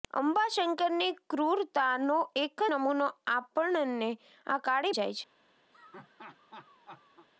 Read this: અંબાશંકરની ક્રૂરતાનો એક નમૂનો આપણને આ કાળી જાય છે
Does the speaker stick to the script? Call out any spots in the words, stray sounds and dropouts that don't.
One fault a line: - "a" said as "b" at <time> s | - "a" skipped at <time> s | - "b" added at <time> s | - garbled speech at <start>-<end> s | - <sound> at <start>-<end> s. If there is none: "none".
- laugh at 5.7-7.3 s